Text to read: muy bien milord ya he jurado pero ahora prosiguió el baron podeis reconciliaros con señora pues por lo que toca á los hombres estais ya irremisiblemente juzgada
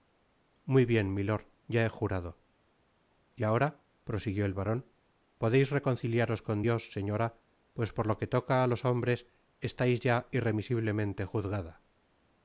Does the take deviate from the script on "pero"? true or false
true